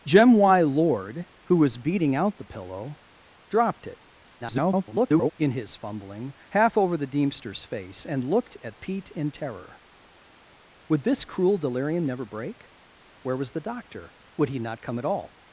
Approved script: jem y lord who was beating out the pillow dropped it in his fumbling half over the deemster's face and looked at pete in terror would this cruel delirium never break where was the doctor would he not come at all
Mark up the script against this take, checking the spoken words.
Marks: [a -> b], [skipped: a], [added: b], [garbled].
jem y lord who was beating out the pillow dropped it [garbled] in his fumbling half over the deemster's face and looked at pete in terror would this cruel delirium never break where was the doctor would he not come at all